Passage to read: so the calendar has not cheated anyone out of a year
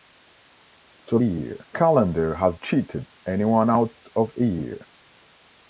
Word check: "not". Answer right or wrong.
wrong